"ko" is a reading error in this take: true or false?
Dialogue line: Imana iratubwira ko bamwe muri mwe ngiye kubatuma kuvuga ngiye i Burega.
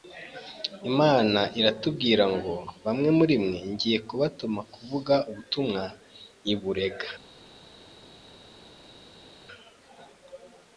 true